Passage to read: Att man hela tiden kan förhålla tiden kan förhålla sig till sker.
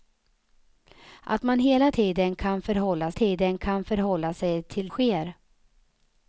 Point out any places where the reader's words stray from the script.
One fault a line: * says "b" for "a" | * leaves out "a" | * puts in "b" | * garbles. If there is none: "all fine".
all fine